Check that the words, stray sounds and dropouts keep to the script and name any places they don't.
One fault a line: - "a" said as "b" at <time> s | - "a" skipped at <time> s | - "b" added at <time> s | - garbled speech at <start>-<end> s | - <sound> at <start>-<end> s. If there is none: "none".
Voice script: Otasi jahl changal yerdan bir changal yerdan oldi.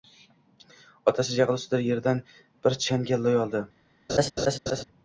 - "changal" said as "ustida" at 1.6 s
- "yerdan" said as "loy" at 3.3 s
- laugh at 4.1-4.8 s